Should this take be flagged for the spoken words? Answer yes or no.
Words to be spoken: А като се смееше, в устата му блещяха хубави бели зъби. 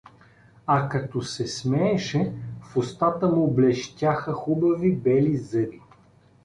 no